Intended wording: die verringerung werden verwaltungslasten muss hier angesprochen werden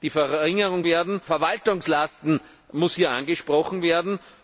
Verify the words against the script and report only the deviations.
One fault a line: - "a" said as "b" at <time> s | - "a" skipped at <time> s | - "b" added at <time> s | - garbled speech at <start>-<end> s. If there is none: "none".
none